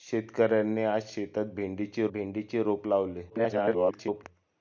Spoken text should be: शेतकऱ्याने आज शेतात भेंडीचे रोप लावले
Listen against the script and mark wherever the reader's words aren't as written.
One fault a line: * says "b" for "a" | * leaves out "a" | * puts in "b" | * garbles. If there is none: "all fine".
* puts in "भेंडीचे"
* garbles